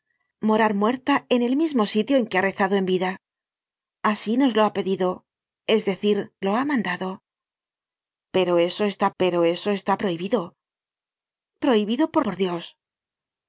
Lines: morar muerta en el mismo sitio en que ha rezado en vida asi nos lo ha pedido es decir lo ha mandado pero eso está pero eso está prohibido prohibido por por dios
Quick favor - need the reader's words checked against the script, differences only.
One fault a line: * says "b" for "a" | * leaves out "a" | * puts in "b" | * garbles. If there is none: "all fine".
all fine